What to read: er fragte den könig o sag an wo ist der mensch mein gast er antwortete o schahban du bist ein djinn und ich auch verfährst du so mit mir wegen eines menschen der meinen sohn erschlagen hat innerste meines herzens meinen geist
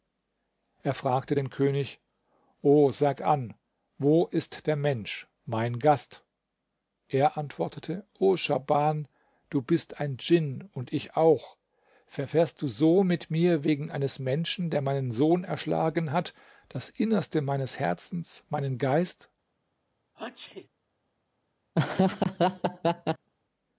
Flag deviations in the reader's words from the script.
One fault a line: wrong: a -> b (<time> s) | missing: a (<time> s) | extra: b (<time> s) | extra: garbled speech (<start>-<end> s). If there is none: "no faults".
extra: das (16.7 s)